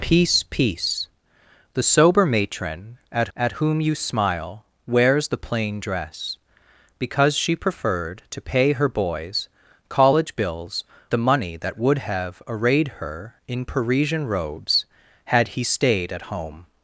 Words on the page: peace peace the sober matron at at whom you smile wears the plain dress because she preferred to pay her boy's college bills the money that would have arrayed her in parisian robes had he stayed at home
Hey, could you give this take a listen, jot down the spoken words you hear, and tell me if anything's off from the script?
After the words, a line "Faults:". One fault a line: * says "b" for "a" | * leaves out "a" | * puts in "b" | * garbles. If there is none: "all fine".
peace peace the sober matron at at whom you smile wears the plain dress because she preferred to pay her boy's college bills the money that would have arrayed her in parisian robes had he stayed at home
Faults:
all fine